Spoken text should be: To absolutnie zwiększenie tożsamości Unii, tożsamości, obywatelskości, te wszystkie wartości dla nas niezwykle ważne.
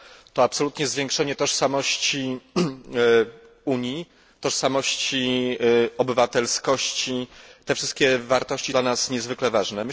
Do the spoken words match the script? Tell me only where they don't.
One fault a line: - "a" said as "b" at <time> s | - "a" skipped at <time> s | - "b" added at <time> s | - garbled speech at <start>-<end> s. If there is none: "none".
none